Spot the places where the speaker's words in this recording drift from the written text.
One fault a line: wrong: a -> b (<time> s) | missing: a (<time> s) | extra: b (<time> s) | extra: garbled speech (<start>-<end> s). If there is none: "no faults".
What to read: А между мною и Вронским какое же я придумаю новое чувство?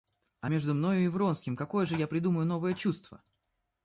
no faults